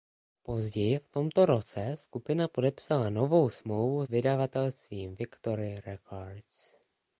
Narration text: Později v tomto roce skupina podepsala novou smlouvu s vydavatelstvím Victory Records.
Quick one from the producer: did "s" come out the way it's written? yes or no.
no